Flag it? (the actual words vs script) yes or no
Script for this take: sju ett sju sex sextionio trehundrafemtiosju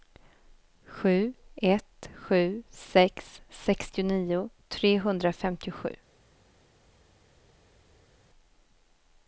no